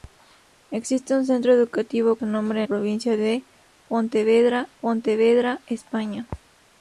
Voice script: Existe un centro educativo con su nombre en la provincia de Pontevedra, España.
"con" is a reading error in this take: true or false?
true